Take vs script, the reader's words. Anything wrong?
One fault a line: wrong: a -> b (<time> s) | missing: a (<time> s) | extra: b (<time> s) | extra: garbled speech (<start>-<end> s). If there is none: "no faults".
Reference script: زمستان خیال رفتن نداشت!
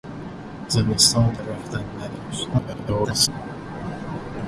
missing: خیال (1.4 s)
extra: garbled speech (2.5-3.3 s)